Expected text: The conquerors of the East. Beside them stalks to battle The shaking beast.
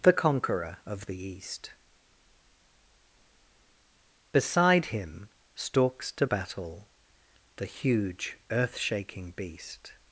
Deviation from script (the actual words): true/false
true